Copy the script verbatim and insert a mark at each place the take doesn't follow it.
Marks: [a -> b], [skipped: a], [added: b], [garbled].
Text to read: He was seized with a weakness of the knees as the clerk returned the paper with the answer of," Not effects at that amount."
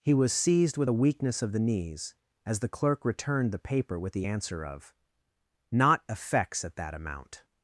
He was seized with a weakness of the knees as the clerk returned the paper with the answer of," Not effects at that amount."